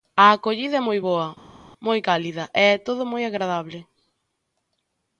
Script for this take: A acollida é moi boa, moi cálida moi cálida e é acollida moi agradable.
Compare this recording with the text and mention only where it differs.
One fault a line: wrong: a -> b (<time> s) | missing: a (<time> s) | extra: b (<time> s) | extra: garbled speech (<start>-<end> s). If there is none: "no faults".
missing: moi cálida (2.4 s)
wrong: acollida -> todo (2.9 s)